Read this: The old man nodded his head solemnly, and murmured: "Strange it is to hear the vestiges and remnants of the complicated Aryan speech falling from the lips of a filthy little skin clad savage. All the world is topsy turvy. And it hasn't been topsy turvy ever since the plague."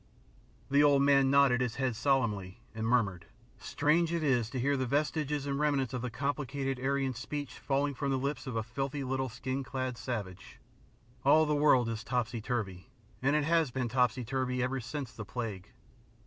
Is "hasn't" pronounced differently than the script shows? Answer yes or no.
yes